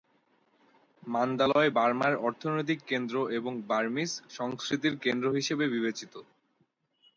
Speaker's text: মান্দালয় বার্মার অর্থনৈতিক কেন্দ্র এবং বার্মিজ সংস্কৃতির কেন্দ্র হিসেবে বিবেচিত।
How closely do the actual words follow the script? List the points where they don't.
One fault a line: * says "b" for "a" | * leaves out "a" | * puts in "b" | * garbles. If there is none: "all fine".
all fine